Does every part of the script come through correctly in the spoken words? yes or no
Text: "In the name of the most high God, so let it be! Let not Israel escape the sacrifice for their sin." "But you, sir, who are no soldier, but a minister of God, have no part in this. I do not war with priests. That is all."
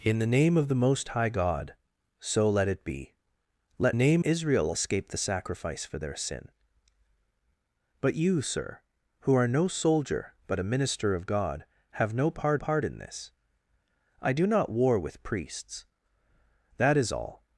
no